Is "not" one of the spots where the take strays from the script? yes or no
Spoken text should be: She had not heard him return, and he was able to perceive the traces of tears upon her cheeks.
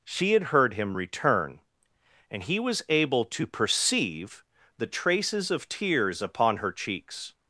yes